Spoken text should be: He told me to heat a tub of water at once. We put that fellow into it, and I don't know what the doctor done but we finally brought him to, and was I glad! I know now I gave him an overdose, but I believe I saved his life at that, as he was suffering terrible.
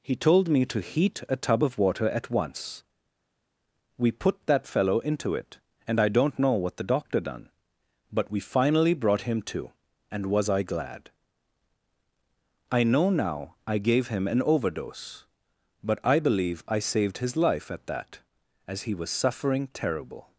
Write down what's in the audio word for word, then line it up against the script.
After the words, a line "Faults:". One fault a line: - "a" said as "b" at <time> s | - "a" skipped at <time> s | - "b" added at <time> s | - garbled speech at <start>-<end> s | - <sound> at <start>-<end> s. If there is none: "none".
He told me to heat a tub of water at once. We put that fellow into it, and I don't know what the doctor done but we finally brought him to, and was I glad! I know now I gave him an overdose, but I believe I saved his life at that, as he was suffering terrible.
Faults:
none